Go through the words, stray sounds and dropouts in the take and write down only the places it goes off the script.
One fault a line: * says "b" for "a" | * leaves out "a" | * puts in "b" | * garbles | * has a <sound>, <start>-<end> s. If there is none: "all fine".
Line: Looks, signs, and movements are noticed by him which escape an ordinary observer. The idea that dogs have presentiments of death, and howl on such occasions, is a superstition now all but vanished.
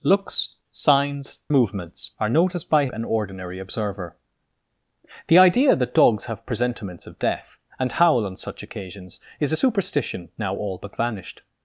* leaves out "and"
* leaves out "him which escape"